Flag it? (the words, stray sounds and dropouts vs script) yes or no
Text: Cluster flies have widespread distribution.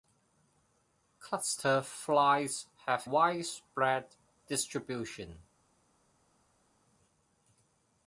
no